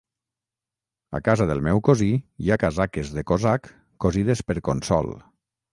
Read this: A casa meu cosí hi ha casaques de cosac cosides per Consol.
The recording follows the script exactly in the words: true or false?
false